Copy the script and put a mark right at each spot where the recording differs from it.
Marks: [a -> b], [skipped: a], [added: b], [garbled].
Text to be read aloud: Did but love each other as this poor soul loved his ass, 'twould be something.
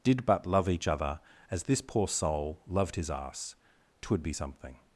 Did but love each other as this poor soul loved his ass, 'twould be something.